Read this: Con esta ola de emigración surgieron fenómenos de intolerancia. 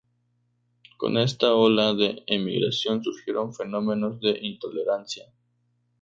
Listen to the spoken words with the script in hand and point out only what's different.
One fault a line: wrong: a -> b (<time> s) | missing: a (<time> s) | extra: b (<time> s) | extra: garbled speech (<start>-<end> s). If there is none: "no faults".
no faults